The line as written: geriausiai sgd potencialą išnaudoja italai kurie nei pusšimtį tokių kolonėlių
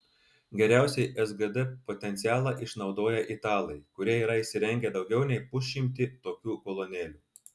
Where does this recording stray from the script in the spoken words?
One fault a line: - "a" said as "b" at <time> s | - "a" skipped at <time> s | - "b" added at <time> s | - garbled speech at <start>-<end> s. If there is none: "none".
- "yra įsirengę daugiau" added at 4.2 s